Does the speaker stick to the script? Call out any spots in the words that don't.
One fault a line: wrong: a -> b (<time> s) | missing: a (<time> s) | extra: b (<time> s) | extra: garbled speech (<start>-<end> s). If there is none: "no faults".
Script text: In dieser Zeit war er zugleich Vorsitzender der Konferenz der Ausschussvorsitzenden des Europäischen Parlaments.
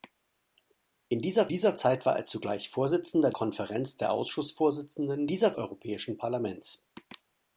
extra: dieser (1.5 s)
missing: der (3.3 s)
wrong: des -> dieser (5.3 s)